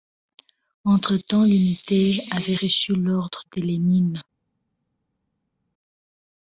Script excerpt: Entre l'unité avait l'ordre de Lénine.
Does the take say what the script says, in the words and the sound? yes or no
no